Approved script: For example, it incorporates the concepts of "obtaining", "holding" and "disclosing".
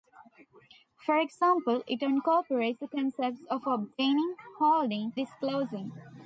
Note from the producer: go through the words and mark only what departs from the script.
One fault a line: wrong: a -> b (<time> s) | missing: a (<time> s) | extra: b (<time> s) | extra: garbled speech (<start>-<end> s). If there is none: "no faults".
missing: and (5.2 s)